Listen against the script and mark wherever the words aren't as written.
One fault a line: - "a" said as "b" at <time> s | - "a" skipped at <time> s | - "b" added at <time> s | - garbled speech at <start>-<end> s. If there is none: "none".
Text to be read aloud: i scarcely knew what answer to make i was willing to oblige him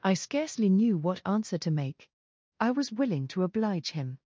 none